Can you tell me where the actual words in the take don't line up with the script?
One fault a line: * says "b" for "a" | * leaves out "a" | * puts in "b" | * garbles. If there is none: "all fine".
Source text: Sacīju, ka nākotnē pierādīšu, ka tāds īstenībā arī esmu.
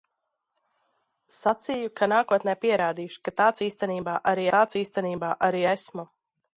* puts in "tāds īstenībā arī"